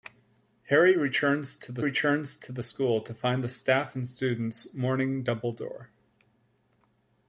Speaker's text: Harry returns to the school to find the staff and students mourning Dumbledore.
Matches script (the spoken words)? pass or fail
fail